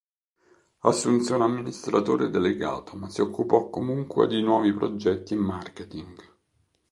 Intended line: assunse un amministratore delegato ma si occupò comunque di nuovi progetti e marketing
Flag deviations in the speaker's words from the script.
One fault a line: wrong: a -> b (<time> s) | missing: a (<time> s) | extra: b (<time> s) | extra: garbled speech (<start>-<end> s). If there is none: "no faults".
no faults